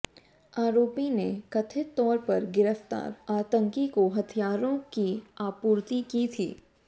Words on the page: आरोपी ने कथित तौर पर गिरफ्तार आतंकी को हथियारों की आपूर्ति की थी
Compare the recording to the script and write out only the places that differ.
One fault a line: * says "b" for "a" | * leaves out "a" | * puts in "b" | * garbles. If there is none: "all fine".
all fine